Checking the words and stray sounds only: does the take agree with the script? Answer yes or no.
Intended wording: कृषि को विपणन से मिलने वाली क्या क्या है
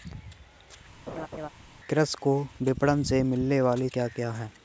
no